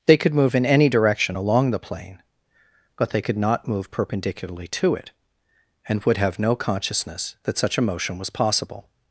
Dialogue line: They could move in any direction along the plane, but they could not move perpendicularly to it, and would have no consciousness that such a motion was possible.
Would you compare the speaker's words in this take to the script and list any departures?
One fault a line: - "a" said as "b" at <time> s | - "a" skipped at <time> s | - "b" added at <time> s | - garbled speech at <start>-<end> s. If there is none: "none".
none